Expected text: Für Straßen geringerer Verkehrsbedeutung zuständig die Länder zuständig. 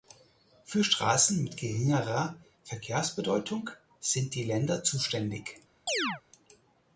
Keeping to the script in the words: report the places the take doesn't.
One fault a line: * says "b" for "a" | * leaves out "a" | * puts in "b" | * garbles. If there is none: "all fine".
* puts in "mit"
* says "sind" for "zuständig"